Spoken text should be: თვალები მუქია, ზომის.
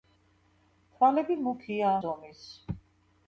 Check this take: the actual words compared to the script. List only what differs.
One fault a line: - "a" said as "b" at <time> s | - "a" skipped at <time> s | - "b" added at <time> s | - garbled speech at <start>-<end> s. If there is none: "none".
none